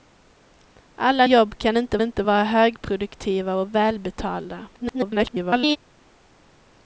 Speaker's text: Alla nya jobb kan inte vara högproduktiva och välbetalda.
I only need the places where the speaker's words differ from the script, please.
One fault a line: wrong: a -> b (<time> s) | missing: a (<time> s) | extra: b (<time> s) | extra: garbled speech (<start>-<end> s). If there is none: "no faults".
missing: nya (1.3 s)
extra: inte (2.0 s)
extra: garbled speech (4.7-5.8 s)